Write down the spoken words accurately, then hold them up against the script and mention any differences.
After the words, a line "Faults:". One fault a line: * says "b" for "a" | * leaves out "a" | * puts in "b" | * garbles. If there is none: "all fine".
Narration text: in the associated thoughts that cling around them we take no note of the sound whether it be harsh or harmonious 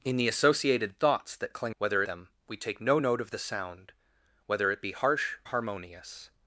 in the associated thoughts that cling whether them we take no note of the sound whether it be harsh harmonious
Faults:
* says "whether" for "around"
* leaves out "or"